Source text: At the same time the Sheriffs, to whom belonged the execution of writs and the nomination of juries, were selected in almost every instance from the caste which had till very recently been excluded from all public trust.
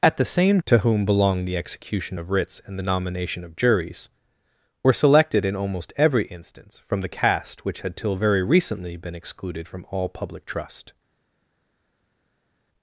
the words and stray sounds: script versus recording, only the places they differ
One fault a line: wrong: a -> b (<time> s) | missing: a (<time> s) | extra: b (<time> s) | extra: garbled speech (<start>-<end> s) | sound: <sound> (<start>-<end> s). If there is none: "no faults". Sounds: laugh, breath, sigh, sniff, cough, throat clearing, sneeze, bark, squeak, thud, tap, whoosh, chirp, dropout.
missing: time the Sheriffs (0.6 s)